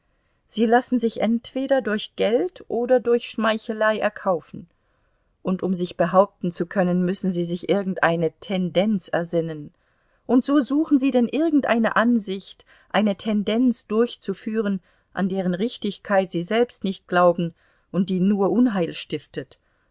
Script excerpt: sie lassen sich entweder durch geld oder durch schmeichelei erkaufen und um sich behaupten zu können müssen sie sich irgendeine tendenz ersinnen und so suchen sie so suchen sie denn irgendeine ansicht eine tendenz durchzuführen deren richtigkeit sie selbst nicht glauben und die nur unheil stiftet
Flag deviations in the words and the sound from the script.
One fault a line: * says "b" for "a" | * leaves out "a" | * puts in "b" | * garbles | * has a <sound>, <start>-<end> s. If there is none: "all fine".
* leaves out "so suchen sie"
* puts in "an"